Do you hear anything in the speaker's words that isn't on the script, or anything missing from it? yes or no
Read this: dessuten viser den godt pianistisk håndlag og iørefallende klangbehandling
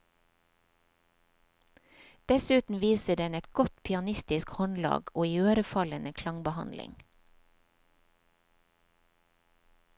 yes